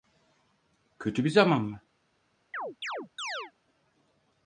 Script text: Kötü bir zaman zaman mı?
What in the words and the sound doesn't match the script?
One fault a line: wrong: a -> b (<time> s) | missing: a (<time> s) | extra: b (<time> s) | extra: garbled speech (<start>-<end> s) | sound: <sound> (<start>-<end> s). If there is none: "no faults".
missing: zaman (1.6 s)
sound: chirp (2.5-3.5 s)